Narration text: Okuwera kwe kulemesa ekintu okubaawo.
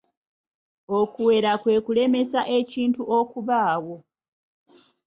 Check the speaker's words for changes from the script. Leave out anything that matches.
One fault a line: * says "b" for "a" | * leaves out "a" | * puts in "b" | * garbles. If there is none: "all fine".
all fine